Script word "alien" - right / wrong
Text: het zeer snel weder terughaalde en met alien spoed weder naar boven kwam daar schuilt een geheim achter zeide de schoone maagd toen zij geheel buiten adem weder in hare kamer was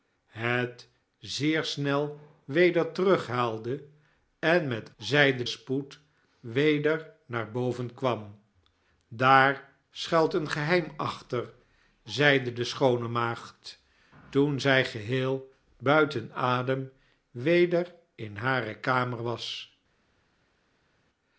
wrong